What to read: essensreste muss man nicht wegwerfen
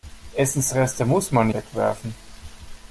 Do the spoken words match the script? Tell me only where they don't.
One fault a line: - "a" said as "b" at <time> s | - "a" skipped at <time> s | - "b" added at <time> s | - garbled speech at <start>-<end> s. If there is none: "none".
- "nicht" skipped at 1.5 s